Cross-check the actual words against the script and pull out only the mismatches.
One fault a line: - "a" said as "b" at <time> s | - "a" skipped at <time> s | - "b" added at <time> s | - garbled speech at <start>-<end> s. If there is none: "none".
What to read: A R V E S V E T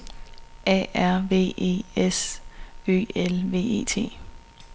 - "Ø L" added at 2.9 s